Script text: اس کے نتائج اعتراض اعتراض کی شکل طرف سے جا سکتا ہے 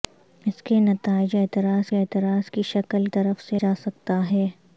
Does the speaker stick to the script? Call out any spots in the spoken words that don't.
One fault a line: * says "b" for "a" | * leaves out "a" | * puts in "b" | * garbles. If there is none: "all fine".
all fine